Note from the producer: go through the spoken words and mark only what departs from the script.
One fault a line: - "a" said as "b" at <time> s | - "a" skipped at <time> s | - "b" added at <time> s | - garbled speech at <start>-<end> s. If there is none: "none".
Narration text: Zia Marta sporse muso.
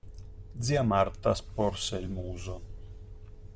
- "il" added at 2.0 s